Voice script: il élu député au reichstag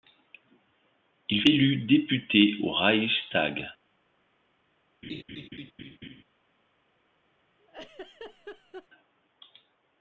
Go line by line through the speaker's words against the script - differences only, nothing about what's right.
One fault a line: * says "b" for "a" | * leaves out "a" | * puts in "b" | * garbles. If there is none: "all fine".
all fine